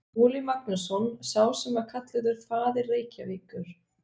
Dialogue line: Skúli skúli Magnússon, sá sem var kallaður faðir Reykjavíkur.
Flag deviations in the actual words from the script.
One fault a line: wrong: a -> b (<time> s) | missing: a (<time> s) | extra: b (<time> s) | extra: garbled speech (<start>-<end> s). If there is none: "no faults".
missing: skúli (0.4 s)